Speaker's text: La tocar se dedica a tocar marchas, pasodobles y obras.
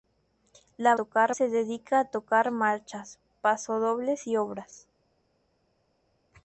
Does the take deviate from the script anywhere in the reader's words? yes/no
no